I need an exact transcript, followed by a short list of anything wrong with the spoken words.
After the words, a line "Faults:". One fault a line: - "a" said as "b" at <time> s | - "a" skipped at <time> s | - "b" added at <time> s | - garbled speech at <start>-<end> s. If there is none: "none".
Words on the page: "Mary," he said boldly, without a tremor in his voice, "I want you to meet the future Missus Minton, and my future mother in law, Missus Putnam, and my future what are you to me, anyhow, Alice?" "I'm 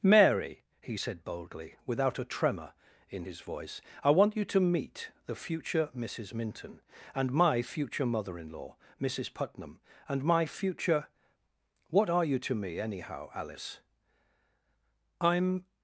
"Mary," he said boldly, without a tremor in his voice, "I want you to meet the future Missus Minton, and my future mother in law, Missus Putnam, and my future what are you to me, anyhow, Alice?" "I'm
Faults:
none